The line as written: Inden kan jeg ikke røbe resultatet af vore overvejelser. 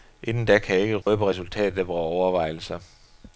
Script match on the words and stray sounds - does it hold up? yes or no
no